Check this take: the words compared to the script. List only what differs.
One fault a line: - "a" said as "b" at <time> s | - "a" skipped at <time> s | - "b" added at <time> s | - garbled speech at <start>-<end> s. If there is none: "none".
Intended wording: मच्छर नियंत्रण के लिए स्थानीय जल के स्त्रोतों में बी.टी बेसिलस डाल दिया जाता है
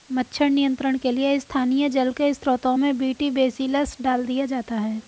none